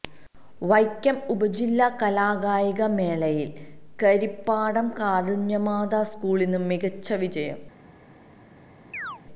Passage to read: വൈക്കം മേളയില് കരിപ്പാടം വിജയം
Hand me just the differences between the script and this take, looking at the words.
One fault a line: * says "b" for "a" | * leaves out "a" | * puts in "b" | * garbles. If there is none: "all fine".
* puts in "ഉപജില്ലാ കലാകായിക"
* puts in "കാരുണ്യമാതാ സ്കൂളിന് മികച്ച"